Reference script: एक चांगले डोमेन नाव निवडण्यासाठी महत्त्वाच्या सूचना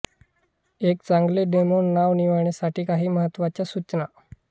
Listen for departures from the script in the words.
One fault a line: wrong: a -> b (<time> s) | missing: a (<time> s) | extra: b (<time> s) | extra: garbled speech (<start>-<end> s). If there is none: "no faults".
extra: काही (2.8 s)